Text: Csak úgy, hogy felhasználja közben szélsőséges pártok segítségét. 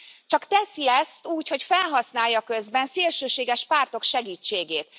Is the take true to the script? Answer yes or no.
no